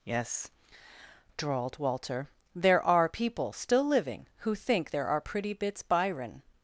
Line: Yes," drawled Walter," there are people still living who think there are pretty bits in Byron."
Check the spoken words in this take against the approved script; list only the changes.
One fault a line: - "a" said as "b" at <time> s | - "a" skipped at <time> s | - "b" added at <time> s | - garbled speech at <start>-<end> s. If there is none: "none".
- "in" skipped at 5.8 s